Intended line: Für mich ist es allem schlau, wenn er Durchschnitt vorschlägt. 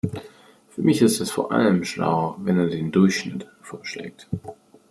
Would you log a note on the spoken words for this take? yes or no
yes